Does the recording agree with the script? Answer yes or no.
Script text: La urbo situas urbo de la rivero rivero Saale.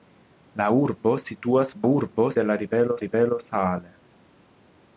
yes